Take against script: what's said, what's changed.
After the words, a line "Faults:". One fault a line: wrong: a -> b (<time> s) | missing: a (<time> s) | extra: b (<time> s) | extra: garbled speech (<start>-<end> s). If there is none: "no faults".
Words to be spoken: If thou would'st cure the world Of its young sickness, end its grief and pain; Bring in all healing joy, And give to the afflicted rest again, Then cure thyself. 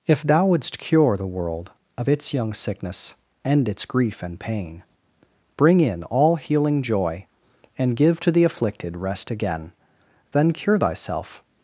If thou would'st cure the world Of its young sickness, end its grief and pain; Bring in all healing joy, And give to the afflicted rest again, Then cure thyself.
Faults:
no faults